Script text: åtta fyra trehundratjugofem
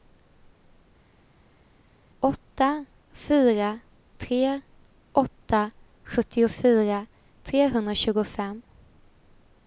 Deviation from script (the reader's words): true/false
true